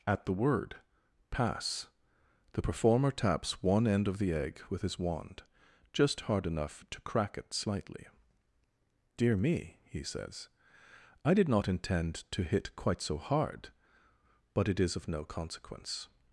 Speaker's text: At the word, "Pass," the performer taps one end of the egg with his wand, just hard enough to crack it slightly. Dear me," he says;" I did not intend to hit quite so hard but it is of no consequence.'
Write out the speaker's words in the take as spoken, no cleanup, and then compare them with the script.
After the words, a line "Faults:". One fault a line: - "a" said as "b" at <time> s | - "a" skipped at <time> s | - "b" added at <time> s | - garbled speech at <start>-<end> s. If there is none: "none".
At the word, "Pass," the performer taps one end of the egg with his wand, just hard enough to crack it slightly. Dear me," he says;" I did not intend to hit quite so hard but it is of no consequence.'
Faults:
none